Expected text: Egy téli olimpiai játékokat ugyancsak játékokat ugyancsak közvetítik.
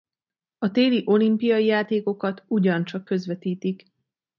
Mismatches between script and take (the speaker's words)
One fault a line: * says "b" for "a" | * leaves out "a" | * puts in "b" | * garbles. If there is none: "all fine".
* says "A" for "Egy"
* leaves out "játékokat ugyancsak"